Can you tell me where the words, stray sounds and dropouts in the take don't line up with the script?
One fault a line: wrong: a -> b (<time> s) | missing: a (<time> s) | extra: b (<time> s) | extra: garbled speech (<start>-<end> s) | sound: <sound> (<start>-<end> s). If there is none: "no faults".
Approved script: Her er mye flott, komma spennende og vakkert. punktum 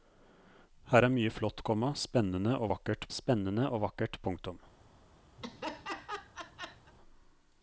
extra: spennende og vakkert (3.1 s)
sound: laugh (5.4-6.9 s)